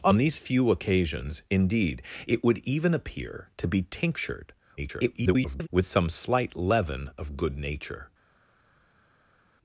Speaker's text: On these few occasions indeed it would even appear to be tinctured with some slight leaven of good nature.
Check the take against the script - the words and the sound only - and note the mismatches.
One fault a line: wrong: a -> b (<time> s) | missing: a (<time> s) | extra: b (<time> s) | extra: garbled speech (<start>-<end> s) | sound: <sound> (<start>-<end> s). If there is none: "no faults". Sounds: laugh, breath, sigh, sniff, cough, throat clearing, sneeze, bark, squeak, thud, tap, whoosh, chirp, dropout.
extra: garbled speech (4.8-5.7 s)